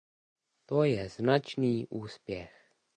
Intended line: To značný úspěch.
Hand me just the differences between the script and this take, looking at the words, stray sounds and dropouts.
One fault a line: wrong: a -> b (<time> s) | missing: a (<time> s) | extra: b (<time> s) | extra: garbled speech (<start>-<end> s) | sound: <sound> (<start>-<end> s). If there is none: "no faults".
extra: je (0.8 s)